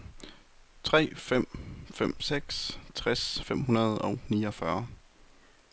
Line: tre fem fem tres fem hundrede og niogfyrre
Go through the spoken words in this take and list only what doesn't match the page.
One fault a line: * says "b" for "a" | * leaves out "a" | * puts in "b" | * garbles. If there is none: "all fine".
* puts in "seks"